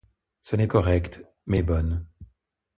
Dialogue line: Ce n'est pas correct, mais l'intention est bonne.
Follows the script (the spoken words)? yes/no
no